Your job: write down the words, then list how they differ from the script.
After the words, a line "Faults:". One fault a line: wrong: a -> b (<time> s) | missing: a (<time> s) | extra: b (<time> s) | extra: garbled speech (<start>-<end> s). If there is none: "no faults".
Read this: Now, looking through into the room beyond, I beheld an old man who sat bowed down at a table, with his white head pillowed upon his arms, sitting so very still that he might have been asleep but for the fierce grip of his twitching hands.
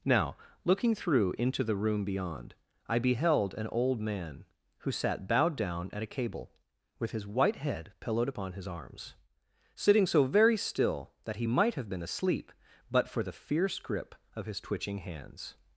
Now, looking through into the room beyond, I beheld an old man who sat bowed down at a cable, with his white head pillowed upon his arms, sitting so very still that he might have been asleep but for the fierce grip of his twitching hands.
Faults:
wrong: table -> cable (6.1 s)